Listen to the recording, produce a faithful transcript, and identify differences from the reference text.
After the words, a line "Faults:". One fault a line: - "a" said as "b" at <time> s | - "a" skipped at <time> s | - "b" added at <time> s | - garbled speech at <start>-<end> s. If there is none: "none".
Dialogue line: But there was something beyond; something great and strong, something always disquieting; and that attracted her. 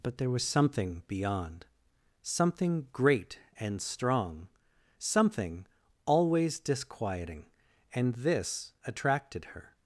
But there was something beyond; something great and strong, something always disquieting; and this attracted her.
Faults:
- "that" said as "this" at 8.2 s